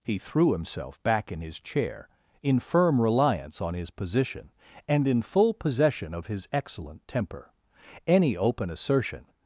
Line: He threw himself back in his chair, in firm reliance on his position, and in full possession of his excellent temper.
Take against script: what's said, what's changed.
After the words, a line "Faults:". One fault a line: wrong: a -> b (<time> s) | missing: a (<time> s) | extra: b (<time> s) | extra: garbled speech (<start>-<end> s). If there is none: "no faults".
He threw himself back in his chair, in firm reliance on his position, and in full possession of his excellent temper. Any open assertion
Faults:
extra: Any open assertion (8.1 s)